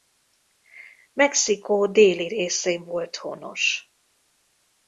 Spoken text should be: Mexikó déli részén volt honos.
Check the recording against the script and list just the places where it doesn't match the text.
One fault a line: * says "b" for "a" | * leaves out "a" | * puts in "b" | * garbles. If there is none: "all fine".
all fine